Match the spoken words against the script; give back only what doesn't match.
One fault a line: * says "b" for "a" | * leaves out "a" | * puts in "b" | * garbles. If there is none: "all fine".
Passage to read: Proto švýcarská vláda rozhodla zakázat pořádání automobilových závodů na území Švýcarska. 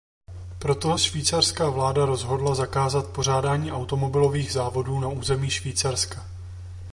all fine